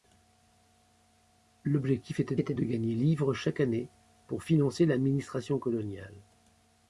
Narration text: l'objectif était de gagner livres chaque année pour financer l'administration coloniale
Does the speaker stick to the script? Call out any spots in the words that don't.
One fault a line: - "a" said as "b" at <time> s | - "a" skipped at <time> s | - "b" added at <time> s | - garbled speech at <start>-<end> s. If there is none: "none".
- "était" added at 2.4 s